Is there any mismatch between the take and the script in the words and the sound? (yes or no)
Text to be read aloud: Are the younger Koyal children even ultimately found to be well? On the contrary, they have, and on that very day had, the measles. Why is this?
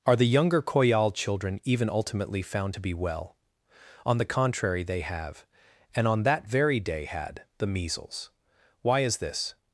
no